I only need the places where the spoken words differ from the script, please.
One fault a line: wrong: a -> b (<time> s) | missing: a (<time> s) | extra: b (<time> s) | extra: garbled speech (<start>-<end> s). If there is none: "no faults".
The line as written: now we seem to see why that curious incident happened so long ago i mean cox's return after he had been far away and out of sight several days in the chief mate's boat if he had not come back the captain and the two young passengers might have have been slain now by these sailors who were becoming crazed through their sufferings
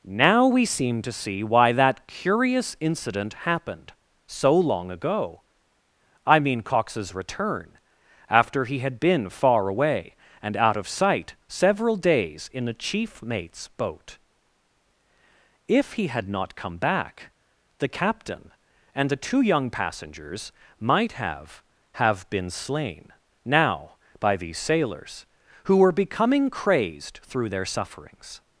no faults